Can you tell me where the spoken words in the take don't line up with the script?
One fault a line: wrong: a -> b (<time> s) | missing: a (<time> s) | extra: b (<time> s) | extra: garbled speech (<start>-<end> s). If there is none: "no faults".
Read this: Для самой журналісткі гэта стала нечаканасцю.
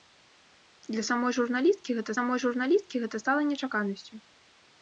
extra: самой журналісткі гэта (2.2 s)